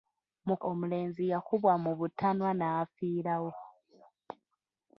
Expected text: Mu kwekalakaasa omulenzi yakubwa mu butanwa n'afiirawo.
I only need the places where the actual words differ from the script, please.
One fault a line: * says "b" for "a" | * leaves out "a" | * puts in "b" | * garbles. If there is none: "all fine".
* leaves out "kwekalakaasa"